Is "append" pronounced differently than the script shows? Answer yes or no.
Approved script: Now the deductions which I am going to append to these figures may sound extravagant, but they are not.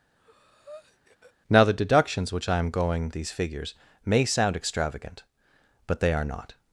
yes